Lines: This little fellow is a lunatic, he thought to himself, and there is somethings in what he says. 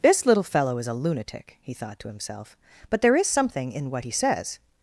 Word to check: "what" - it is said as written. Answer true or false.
true